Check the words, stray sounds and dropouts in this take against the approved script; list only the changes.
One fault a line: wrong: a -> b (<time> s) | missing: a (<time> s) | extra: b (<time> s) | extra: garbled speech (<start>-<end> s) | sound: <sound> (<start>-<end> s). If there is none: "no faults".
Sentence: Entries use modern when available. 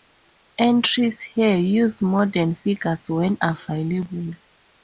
extra: here (1.2 s)
extra: figures (2.5 s)